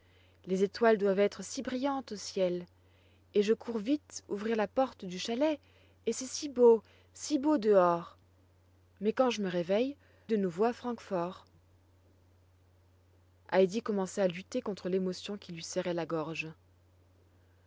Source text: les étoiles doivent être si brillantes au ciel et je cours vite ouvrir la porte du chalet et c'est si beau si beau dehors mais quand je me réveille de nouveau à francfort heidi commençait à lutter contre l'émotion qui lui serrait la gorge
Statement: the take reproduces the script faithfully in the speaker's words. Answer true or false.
true